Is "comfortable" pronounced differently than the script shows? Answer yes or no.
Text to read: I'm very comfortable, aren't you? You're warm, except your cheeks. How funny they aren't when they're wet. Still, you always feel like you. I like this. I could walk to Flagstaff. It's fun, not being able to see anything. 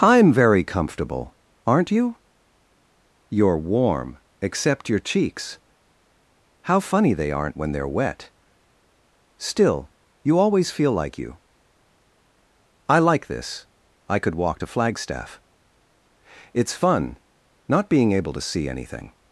no